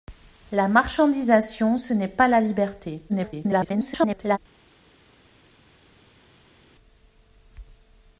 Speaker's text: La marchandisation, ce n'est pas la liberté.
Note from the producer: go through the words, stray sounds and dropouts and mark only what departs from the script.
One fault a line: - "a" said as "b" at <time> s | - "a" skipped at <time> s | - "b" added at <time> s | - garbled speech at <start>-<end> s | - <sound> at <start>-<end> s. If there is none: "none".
- garbled speech at 3.1-4.4 s